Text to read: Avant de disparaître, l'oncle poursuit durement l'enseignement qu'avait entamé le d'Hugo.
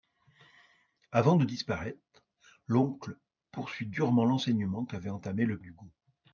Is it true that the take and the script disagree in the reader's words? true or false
false